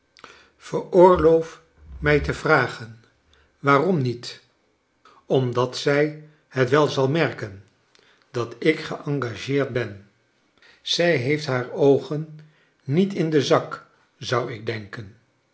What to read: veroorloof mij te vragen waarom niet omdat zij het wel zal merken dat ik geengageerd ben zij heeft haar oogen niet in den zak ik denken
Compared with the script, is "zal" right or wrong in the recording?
right